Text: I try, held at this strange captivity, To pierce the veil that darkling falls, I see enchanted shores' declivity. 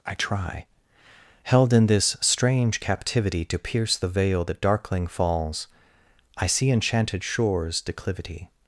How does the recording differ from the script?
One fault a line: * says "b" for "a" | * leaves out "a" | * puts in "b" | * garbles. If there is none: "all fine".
* says "in" for "at"